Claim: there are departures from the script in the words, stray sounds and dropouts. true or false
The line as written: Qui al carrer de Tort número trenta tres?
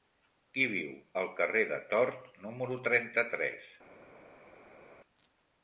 true